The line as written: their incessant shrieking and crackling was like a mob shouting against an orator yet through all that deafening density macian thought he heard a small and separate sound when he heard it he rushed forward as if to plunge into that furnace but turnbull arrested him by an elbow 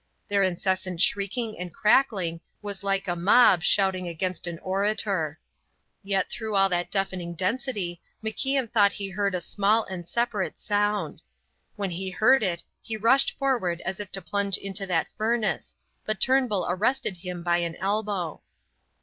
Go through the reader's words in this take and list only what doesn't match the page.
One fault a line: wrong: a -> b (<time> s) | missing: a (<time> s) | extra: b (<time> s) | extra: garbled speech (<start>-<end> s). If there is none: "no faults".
no faults